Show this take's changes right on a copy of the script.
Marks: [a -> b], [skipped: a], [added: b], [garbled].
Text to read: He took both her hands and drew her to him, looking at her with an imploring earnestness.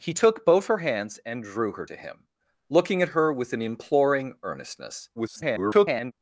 He took both her hands and drew her to him, looking at her with an imploring earnestness. [garbled]